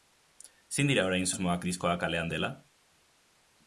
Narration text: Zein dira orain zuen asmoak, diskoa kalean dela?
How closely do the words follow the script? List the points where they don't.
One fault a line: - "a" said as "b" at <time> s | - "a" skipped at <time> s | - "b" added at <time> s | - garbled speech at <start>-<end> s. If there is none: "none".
- "zuen" skipped at 1.3 s